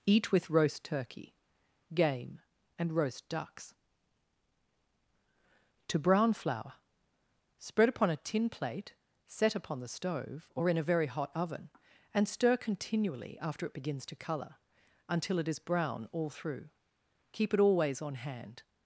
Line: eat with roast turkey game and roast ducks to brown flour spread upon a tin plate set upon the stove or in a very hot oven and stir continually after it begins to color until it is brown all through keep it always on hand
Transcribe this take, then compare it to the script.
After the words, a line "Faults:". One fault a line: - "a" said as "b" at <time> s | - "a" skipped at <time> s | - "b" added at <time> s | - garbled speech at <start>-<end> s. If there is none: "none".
eat with roast turkey game and roast ducks to brown flour spread upon a tin plate set upon the stove or in a very hot oven and stir continually after it begins to color until it is brown all through keep it always on hand
Faults:
none